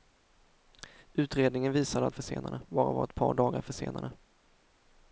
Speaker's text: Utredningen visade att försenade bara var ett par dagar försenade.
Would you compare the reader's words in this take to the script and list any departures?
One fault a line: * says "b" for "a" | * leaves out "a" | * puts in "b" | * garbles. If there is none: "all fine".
all fine